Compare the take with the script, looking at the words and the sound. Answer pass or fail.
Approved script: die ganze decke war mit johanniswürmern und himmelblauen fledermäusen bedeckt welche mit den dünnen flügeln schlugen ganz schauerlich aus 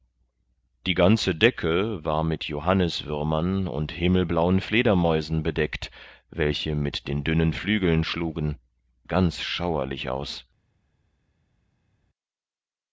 pass